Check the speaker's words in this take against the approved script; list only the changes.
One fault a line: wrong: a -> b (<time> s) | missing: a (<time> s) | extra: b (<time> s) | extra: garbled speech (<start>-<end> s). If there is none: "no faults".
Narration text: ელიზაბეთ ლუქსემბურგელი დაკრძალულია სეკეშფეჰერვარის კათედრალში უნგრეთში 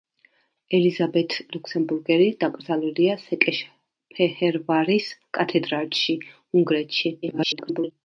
extra: garbled speech (7.2-7.9 s)